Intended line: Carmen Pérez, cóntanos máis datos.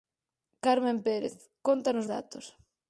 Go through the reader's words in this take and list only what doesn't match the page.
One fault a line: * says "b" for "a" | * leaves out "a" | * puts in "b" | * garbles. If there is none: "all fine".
* leaves out "máis"